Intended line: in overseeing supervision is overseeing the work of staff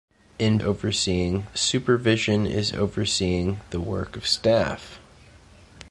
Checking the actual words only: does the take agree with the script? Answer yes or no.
yes